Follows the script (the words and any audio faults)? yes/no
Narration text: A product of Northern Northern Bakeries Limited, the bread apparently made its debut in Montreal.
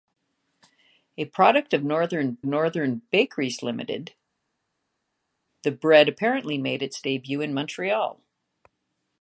yes